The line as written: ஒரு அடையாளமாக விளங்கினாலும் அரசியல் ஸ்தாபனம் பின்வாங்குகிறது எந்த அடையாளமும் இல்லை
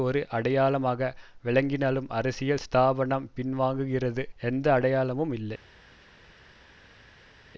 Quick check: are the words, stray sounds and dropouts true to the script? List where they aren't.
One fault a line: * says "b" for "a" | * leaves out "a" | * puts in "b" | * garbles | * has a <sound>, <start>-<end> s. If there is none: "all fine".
all fine